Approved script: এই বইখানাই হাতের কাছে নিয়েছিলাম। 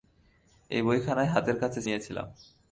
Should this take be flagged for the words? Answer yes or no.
no